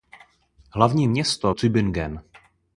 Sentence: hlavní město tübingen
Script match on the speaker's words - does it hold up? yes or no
yes